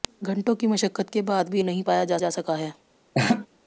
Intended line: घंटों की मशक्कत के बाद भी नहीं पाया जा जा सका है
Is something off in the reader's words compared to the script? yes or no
no